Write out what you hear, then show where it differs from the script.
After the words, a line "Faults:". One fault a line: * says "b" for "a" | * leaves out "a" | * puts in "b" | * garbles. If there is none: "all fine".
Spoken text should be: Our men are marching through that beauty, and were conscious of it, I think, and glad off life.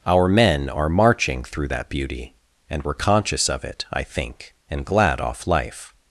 Our men are marching through that beauty, and were conscious of it, I think, and glad off life.
Faults:
all fine